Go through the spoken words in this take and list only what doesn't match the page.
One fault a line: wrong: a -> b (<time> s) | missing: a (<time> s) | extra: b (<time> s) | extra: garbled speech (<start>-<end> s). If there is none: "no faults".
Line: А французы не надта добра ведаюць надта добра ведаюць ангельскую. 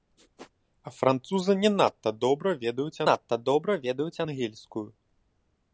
no faults